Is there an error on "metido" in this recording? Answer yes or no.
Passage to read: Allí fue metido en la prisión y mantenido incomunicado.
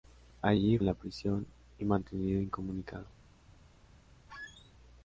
yes